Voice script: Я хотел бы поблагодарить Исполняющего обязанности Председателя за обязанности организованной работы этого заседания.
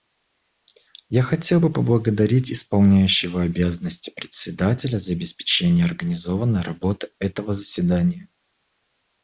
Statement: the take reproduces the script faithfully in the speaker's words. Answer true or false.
false